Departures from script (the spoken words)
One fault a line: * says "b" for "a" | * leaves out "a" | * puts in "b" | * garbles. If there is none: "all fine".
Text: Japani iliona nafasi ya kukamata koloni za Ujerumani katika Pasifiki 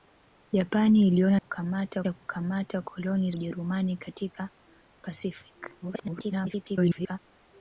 * says "kukamata" for "nafasi"
* leaves out "za"
* garbles